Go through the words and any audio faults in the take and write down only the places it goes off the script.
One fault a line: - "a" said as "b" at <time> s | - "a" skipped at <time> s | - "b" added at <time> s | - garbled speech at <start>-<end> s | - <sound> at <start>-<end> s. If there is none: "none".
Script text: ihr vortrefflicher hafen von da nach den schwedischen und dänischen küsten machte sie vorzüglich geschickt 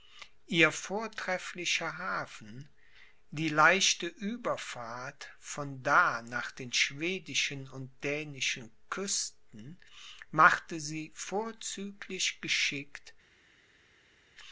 - "die leichte ueberfahrt" added at 3.3 s